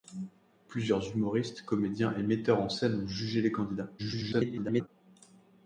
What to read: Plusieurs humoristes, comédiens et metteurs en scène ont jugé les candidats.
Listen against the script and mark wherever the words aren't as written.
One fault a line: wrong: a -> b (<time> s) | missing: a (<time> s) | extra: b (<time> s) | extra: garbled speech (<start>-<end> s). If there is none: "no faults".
extra: garbled speech (4.0-4.9 s)